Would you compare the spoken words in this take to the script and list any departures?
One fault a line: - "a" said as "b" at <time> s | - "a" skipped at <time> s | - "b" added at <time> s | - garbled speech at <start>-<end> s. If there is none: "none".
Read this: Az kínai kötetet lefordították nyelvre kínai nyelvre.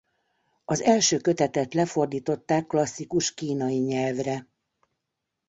- "kínai" said as "első" at 0.8 s
- "nyelvre" said as "klasszikus" at 2.7 s